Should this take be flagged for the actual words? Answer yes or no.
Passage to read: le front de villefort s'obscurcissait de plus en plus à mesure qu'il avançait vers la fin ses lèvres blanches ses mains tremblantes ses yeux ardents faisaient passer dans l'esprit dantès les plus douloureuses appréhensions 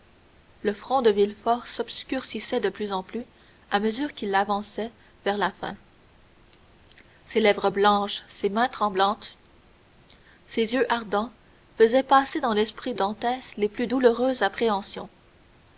no